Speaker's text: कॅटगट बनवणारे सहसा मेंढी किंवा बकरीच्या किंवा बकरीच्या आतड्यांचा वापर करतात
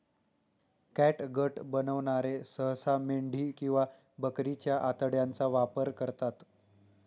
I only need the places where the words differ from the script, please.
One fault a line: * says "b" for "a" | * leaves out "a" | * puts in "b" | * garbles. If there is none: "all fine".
* leaves out "किंवा बकरीच्या"